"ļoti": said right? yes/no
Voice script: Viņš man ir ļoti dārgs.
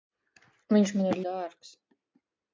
no